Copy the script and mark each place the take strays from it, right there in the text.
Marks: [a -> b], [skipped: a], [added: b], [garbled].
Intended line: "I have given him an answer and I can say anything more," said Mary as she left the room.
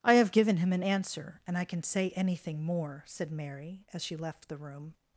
"I have given him an answer and I can say anything more," said Mary as she left the room.